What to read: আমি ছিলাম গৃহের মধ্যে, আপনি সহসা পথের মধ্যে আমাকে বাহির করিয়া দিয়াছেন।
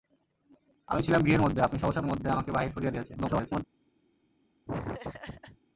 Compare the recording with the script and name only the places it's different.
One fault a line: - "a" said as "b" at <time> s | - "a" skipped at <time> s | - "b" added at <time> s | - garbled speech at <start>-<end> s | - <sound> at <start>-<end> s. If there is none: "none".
- "পথের" skipped at 2.0 s
- garbled speech at 3.1-3.6 s
- laugh at 4.7-5.6 s